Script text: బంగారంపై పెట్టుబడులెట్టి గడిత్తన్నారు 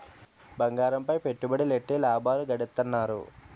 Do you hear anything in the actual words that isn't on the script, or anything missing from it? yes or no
yes